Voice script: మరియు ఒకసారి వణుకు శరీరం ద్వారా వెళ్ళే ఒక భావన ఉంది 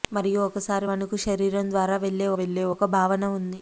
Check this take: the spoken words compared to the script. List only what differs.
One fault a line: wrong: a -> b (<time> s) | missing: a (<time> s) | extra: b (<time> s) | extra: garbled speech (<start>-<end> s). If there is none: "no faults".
extra: వెళ్ళే (2.4 s)